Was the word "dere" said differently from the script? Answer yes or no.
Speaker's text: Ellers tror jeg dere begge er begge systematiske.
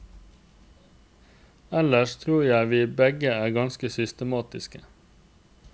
yes